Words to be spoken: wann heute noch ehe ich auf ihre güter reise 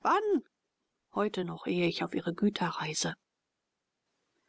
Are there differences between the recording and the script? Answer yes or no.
no